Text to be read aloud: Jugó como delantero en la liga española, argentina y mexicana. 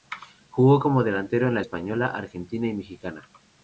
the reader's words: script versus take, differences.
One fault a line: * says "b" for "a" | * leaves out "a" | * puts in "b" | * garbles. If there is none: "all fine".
* leaves out "liga"